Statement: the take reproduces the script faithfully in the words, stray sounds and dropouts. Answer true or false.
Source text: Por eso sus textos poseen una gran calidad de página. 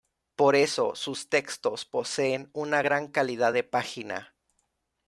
true